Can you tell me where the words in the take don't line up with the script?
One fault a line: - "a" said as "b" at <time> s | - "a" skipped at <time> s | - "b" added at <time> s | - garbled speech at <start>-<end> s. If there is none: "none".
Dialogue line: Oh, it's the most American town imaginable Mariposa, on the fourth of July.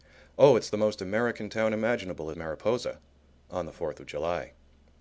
none